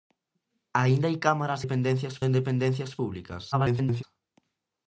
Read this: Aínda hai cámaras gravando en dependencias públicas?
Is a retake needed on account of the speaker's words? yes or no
yes